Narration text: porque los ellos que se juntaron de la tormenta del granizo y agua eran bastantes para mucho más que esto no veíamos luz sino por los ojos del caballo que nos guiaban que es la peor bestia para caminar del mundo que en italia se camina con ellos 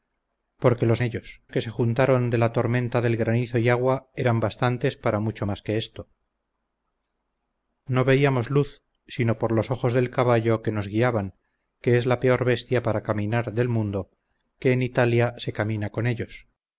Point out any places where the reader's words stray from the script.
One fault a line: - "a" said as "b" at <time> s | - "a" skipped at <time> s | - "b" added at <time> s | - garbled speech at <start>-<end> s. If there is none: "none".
none